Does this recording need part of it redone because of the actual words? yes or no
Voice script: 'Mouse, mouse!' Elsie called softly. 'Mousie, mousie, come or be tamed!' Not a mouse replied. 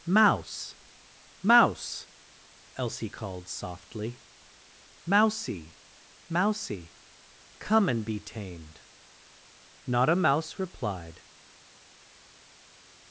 yes